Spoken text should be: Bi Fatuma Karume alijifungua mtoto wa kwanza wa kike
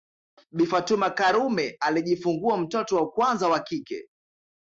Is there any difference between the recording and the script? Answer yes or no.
no